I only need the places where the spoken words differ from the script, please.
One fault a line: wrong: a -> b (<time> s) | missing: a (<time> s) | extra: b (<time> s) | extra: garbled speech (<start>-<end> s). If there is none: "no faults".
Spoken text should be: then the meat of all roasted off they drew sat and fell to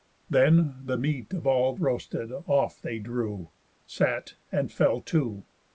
no faults